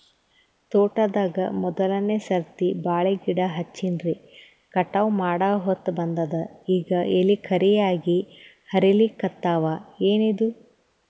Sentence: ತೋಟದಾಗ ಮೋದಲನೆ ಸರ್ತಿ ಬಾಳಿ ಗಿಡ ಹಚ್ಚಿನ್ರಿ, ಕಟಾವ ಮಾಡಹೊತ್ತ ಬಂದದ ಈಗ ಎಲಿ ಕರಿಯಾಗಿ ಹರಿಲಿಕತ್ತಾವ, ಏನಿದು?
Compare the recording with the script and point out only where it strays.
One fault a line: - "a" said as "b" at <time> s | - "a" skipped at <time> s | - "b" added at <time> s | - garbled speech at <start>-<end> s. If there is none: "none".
none